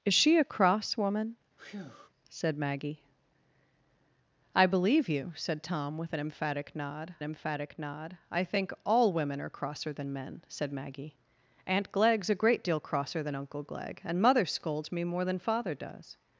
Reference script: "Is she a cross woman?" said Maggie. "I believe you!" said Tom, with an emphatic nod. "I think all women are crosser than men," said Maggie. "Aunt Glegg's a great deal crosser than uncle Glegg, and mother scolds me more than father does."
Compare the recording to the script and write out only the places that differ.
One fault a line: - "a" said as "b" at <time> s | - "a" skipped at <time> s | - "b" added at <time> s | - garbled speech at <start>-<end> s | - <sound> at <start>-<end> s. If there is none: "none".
- breath at 1.6-2.1 s
- "emphatic nod" added at 7.2 s